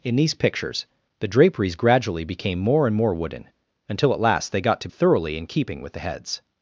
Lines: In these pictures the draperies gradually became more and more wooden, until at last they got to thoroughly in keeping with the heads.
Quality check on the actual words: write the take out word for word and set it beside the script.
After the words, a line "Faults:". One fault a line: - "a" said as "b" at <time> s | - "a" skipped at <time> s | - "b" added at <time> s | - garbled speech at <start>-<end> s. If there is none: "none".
In these pictures the draperies gradually became more and more wooden, until at last they got to thoroughly in keeping with the heads.
Faults:
none